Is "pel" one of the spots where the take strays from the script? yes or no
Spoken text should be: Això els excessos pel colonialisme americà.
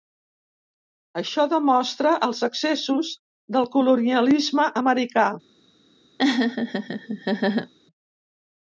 yes